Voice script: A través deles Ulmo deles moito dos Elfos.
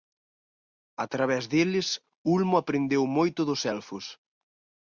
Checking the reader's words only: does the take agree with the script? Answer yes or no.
no